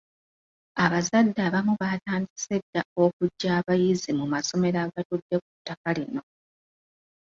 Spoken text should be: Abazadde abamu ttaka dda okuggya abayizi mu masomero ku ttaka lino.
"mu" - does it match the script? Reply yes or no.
yes